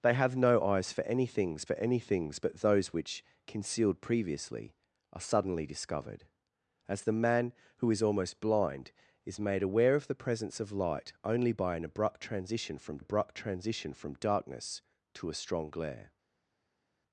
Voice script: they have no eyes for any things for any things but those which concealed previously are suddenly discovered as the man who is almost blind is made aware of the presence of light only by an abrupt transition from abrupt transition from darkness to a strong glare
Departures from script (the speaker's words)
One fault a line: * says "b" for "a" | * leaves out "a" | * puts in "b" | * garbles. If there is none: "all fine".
all fine